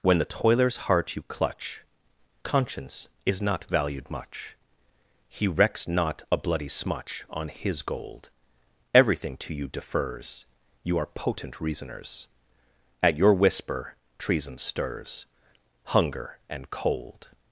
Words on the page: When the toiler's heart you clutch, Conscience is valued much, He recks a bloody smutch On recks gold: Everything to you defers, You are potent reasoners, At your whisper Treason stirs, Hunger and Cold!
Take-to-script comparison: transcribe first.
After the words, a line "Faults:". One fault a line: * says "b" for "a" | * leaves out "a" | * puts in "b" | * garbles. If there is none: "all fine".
When the toiler's heart you clutch, Conscience is not valued much, He recks not a bloody smutch On his gold: Everything to you defers, You are potent reasoners, At your whisper Treason stirs, Hunger and Cold!
Faults:
* puts in "not"
* puts in "not"
* says "his" for "recks"